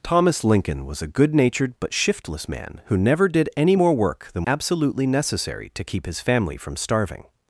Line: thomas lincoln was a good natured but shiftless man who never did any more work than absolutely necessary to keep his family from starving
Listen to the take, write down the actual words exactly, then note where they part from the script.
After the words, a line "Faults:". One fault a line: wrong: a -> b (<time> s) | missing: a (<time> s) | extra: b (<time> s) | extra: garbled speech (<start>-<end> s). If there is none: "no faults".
thomas lincoln was a good natured but shiftless man who never did any more work than absolutely necessary to keep his family from starving
Faults:
no faults